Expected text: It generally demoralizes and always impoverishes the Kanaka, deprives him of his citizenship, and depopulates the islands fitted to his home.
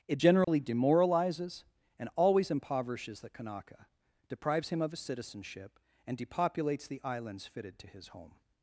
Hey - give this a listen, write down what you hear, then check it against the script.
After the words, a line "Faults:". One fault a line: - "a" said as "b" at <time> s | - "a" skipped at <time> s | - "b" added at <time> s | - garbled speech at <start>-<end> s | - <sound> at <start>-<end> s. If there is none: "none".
It generally demoralizes and always impoverishes the Kanaka, deprives him of his citizenship, and depopulates the islands fitted to his home.
Faults:
- dropout at 0.4-0.5 s